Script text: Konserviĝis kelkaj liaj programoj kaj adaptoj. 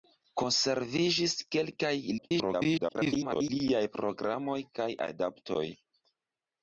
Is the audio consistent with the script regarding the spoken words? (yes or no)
no